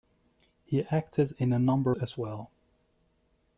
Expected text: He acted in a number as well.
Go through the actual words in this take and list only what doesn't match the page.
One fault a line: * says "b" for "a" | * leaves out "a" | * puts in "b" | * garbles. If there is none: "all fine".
all fine